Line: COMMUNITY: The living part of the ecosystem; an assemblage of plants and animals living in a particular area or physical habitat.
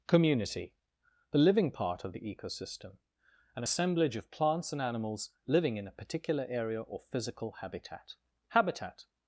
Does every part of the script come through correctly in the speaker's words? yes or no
no